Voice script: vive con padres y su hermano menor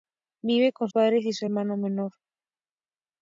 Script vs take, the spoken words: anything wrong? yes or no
no